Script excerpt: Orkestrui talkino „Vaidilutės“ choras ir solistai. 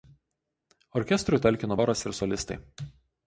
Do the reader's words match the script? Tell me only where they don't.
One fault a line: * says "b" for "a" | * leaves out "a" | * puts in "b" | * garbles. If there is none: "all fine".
* leaves out "Vaidilutės"